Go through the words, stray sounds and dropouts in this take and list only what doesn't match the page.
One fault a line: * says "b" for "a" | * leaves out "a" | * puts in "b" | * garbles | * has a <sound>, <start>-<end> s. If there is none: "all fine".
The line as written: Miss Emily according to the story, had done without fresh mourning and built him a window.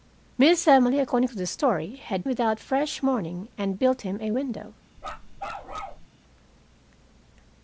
* leaves out "done"
* has a bark, 5.0-6.1 s